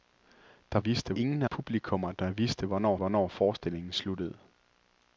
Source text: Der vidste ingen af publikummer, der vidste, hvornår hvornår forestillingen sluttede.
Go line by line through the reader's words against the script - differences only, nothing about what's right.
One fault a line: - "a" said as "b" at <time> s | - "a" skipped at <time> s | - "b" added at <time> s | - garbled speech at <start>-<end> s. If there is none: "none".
none